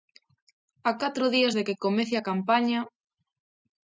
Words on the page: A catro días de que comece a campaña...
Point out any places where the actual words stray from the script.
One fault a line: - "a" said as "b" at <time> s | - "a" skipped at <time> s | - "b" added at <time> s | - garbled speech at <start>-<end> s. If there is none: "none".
none